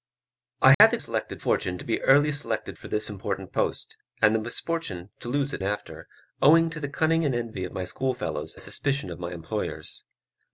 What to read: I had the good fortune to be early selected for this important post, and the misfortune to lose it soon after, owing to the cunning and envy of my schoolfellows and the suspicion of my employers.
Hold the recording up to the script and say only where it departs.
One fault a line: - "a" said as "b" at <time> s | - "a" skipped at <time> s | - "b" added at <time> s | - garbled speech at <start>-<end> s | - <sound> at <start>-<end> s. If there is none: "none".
- dropout at 0.7-0.8 s
- "good" said as "selected" at 1.0 s
- "soon" skipped at 5.6 s
- "and" skipped at 8.5 s